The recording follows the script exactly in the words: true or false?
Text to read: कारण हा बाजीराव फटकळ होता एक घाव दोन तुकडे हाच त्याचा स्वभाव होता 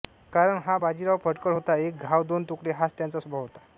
true